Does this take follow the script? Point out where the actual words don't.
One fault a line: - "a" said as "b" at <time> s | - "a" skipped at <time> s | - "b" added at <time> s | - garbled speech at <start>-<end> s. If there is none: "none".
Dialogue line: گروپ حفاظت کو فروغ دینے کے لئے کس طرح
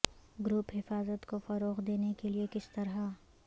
none